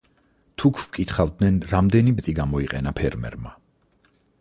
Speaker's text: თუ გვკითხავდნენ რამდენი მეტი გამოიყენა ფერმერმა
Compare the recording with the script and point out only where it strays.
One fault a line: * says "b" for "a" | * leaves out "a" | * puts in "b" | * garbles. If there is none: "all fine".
all fine